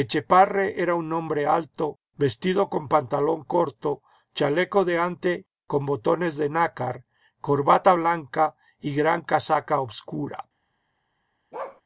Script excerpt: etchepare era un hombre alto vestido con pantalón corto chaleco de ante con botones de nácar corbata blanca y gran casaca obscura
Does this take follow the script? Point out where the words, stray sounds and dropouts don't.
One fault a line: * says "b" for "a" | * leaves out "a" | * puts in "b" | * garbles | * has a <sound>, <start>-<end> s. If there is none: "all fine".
* has a bark, 11.5-11.8 s